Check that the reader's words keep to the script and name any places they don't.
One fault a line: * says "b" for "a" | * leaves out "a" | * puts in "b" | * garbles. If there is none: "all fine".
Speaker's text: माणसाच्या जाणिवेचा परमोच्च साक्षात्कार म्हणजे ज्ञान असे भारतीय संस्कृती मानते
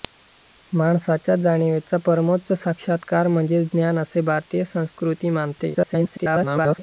* garbles